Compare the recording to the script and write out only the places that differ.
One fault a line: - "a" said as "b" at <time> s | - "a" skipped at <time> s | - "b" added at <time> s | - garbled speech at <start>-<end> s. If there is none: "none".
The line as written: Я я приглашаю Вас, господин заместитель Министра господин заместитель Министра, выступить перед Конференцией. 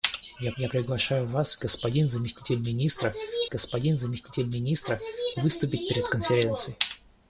none